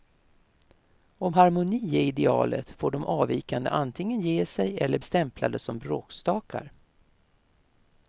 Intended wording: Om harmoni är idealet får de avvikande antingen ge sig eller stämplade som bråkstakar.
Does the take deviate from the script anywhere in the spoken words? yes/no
no